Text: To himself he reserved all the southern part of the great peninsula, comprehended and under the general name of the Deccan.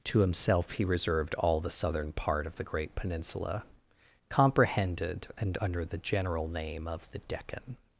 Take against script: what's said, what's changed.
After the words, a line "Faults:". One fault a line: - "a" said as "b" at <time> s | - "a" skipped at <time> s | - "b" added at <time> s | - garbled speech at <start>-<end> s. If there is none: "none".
To himself he reserved all the southern part of the great peninsula, comprehended and under the general name of the Deccan.
Faults:
none